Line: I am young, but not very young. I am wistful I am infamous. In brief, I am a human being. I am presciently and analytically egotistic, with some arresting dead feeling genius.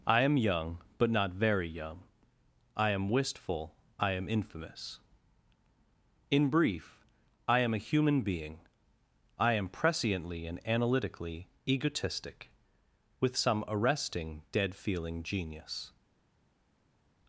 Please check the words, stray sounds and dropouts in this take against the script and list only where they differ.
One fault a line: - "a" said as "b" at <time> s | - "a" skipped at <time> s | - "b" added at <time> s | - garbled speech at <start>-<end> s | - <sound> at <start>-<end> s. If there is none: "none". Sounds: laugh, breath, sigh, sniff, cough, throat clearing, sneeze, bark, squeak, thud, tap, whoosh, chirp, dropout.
none